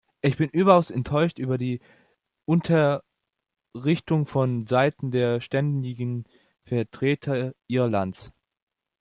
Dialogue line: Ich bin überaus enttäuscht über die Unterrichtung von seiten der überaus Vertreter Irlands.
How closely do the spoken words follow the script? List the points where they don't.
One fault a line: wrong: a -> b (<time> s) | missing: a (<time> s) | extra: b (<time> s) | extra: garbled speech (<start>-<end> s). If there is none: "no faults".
wrong: überaus -> ständigen (5.4 s)